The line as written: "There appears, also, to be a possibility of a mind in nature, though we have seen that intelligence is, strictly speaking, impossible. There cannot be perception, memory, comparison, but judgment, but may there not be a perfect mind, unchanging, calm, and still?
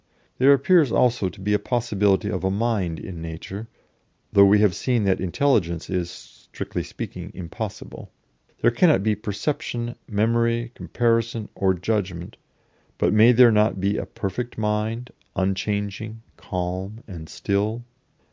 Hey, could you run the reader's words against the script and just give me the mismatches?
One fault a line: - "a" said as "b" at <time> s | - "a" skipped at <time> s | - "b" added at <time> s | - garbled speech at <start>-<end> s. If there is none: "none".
- "but" said as "or" at 11.5 s